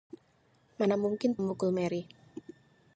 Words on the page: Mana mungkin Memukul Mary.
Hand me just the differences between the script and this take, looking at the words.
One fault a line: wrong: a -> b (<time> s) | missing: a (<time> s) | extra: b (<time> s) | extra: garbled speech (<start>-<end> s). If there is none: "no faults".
no faults